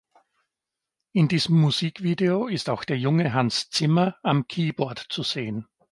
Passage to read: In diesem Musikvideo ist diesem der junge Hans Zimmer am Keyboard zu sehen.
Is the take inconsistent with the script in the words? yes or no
yes